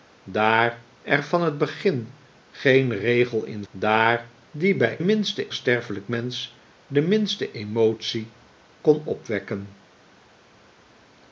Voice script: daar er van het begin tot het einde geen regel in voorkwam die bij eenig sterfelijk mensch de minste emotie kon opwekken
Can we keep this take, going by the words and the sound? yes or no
no